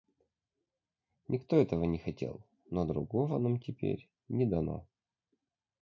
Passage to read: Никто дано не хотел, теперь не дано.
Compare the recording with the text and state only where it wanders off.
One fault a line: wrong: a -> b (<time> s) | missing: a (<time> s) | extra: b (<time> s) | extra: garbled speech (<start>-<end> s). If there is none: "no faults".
wrong: дано -> этого (1.6 s)
extra: но другого нам (2.7 s)